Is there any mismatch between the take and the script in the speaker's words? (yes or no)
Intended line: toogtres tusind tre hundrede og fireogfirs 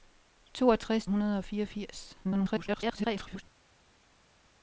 yes